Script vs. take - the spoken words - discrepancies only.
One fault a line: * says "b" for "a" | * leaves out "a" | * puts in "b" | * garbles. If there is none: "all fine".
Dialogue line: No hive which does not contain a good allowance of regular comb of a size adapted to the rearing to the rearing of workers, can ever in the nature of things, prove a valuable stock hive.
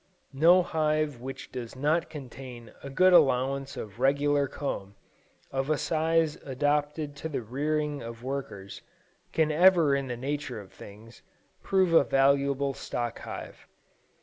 * leaves out "to the rearing"